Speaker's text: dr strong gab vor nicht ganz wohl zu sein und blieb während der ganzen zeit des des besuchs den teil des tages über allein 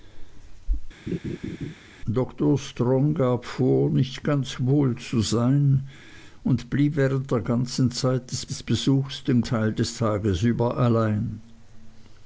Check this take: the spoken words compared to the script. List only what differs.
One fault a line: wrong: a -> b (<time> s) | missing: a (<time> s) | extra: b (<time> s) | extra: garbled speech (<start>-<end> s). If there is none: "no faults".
no faults